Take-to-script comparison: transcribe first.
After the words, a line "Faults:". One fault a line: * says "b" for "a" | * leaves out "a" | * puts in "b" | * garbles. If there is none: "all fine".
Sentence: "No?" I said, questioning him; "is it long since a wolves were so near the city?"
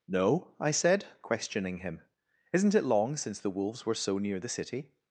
"No?" I said, questioning him; "isn't it long since the wolves were so near the city?"
Faults:
* says "isn't" for "is"
* says "the" for "a"